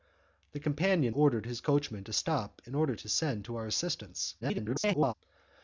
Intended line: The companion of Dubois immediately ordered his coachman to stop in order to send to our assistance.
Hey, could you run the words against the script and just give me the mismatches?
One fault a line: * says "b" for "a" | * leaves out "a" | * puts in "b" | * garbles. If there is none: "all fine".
* leaves out "of Dubois immediately"
* garbles